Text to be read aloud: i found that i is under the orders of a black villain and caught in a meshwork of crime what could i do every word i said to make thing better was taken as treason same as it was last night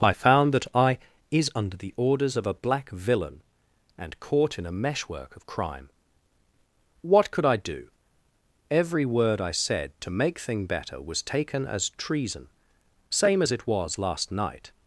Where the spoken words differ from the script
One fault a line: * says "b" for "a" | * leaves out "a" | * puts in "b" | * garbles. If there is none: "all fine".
all fine